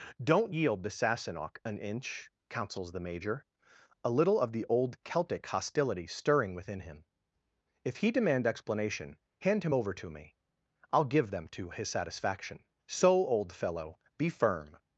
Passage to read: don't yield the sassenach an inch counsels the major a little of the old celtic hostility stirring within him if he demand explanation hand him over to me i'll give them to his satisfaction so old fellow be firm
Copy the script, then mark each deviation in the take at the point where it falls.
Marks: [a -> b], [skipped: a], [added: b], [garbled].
don't yield the sassenach an inch counsels the major a little of the old celtic hostility stirring within him if he demand explanation hand him over to me i'll give them to his satisfaction so old fellow be firm